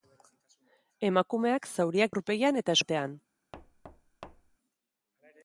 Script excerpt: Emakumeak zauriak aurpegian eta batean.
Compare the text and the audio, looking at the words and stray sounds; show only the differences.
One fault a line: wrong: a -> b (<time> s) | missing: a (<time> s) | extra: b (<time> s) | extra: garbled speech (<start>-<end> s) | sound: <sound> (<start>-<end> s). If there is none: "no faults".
sound: thud (3.5-4.6 s)